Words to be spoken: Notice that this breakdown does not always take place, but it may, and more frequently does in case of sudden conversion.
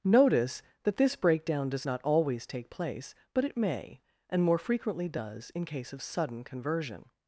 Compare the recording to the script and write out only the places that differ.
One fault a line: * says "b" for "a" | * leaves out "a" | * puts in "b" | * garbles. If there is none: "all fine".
all fine